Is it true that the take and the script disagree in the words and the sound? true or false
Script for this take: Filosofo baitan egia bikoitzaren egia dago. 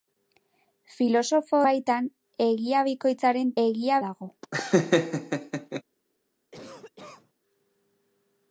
true